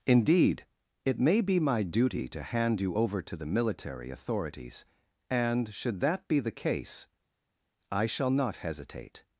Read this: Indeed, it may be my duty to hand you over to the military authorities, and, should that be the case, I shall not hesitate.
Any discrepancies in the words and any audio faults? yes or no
no